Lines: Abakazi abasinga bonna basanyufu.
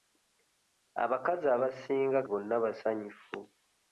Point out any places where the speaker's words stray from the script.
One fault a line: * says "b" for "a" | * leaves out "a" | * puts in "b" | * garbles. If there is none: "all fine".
all fine